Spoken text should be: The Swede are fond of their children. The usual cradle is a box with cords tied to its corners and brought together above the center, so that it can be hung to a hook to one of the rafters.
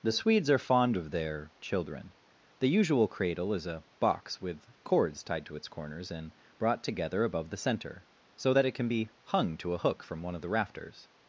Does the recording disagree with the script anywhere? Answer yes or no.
yes